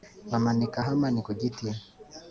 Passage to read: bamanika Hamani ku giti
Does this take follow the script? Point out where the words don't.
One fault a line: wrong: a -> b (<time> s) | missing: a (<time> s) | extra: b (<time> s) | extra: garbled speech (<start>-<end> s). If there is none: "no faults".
no faults